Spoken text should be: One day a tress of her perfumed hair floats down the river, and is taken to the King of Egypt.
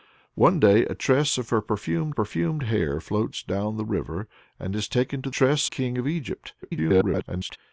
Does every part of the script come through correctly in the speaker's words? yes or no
no